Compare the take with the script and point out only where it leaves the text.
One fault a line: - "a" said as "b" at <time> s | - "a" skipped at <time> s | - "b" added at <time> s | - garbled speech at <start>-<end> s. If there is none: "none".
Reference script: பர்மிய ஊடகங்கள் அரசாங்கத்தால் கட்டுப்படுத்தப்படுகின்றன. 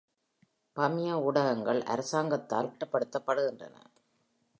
none